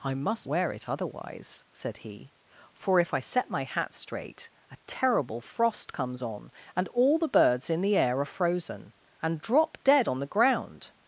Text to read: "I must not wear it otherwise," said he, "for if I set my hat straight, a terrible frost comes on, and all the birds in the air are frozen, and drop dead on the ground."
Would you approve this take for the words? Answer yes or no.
no